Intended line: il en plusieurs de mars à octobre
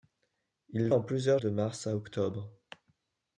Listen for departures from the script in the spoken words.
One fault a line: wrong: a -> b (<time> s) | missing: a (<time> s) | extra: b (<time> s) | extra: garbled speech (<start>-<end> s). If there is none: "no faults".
no faults